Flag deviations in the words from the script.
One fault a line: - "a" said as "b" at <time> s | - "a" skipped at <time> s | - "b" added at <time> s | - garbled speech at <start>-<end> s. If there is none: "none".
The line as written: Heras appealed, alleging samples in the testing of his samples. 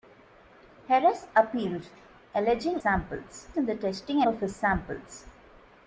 none